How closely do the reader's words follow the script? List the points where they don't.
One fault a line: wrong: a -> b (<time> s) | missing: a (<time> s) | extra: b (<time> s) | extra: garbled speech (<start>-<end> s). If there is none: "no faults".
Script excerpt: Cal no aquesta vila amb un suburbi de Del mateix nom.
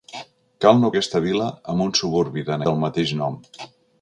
no faults